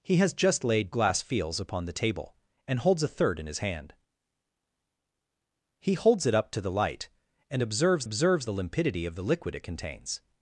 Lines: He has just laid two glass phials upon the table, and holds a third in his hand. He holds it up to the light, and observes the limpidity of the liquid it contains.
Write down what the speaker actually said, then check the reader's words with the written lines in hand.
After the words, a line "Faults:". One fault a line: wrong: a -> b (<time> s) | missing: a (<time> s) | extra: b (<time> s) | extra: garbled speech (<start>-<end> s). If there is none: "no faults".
He has just laid glass phials upon the table, and holds a third in his hand. He holds it up to the light, and observes observes the limpidity of the liquid it contains.
Faults:
missing: two (0.9 s)
extra: observes (8.0 s)